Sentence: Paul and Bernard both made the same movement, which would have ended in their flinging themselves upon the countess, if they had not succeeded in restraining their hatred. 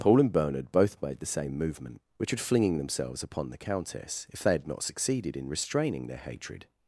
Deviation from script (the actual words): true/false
true